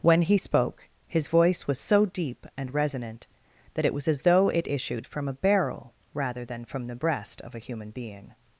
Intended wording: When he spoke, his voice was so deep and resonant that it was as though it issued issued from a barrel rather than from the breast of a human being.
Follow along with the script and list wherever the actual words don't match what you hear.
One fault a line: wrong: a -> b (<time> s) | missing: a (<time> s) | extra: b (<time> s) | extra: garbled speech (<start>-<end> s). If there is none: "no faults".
missing: issued (5.1 s)